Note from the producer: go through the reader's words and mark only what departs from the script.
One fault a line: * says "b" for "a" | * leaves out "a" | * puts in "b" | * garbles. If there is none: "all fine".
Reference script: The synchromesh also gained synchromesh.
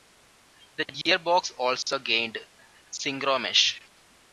* says "gearbox" for "synchromesh"